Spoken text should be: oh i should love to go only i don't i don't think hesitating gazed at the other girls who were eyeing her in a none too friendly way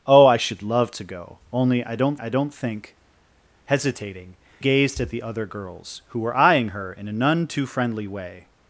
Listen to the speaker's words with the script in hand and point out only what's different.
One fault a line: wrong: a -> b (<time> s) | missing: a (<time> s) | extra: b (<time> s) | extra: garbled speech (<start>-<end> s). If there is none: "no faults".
no faults